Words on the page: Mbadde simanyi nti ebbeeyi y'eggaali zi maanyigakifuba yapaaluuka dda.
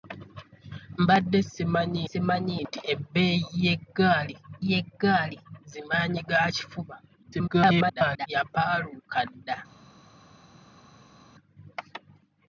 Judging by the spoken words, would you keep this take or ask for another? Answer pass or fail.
fail